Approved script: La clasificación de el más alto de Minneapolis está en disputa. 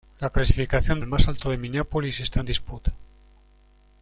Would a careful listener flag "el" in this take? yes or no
no